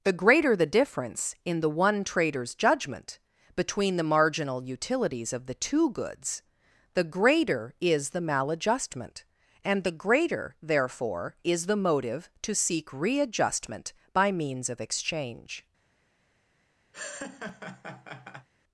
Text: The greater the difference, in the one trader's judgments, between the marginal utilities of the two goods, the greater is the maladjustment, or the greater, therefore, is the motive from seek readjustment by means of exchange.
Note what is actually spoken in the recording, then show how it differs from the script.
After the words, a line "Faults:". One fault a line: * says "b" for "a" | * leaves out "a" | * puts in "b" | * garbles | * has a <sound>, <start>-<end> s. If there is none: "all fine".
The greater the difference, in the one trader's judgment, between the marginal utilities of the two goods, the greater is the maladjustment, and the greater, therefore, is the motive to seek readjustment by means of exchange.
Faults:
* says "judgment" for "judgments"
* says "and" for "or"
* says "to" for "from"
* has a laugh, 16.9-18.5 s